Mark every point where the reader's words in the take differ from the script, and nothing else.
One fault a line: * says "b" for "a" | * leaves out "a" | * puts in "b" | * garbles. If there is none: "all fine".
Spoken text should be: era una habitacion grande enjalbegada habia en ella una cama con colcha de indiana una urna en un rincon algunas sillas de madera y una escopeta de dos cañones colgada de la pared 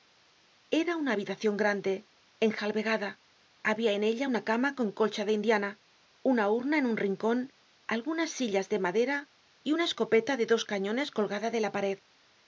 all fine